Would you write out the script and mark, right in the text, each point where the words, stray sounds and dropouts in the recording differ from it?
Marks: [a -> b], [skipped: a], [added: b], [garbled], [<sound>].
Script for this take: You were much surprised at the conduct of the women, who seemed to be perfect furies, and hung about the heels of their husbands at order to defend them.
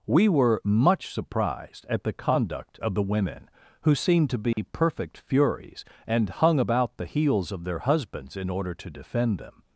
[You -> We] were much surprised at the conduct of the women, who seemed to be [dropout] perfect furies, and hung about the heels of their husbands [at -> in] order to defend them.